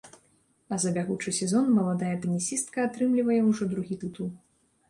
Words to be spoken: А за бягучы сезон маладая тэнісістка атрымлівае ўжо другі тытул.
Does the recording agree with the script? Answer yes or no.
yes